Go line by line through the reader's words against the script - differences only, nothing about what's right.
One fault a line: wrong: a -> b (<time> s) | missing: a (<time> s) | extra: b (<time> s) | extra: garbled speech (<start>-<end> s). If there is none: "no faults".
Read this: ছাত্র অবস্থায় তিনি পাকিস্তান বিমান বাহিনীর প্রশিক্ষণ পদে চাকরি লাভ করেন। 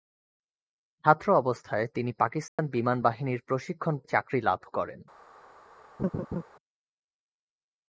missing: পদে (4.0 s)